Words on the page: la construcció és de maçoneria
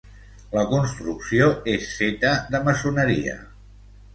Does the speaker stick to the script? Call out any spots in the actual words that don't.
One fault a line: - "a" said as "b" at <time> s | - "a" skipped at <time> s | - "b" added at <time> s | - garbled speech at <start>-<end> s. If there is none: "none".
- "feta" added at 2.0 s